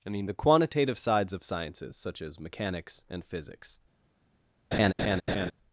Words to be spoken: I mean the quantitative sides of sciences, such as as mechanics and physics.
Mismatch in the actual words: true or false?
true